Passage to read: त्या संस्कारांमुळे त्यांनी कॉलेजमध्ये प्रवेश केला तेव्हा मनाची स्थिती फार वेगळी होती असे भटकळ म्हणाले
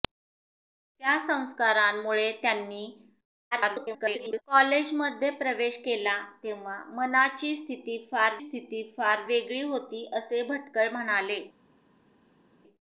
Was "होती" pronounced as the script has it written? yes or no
yes